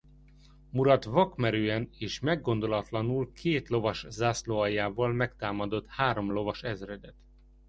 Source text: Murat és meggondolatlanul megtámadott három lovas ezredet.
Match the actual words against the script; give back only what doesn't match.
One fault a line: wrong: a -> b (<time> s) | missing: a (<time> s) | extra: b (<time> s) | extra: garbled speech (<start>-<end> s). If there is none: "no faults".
extra: vakmerően (1.0 s)
extra: két lovas zászlóaljával (3.3 s)